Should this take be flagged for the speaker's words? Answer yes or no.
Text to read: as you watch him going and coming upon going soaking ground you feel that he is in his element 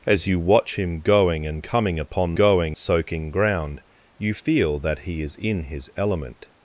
no